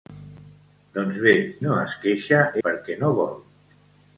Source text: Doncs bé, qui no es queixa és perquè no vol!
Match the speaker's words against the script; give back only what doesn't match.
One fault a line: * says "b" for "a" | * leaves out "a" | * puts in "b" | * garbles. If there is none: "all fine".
* leaves out "qui"
* leaves out "és"